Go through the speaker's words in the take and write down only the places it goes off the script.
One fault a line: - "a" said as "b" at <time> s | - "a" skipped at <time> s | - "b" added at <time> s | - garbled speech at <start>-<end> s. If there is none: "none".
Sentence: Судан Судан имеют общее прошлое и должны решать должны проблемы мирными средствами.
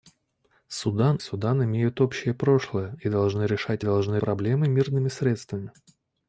none